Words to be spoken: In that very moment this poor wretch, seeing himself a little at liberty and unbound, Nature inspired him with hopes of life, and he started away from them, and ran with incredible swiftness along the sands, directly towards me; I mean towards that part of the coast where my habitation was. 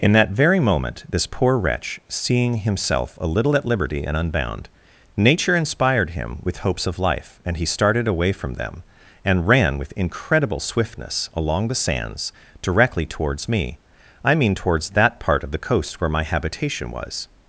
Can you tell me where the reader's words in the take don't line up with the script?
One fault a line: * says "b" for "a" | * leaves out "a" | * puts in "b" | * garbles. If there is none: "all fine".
all fine